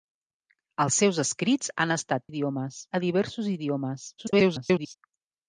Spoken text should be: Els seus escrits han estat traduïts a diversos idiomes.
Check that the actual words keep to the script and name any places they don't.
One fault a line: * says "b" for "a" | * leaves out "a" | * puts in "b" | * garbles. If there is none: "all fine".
* says "idiomes" for "traduïts"
* garbles